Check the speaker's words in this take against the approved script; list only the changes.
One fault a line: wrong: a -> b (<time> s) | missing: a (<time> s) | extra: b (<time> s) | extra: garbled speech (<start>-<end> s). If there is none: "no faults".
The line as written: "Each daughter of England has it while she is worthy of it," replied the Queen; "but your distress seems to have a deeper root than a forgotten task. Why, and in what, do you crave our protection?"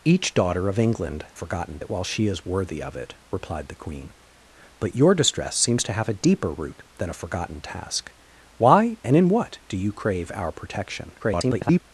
wrong: has -> forgotten (1.3 s)
extra: garbled speech (11.2-11.8 s)